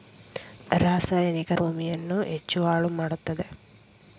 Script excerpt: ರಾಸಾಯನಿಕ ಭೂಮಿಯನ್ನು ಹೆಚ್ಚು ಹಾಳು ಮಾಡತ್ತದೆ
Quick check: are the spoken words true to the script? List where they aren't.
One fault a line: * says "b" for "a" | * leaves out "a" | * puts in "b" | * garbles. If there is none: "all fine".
all fine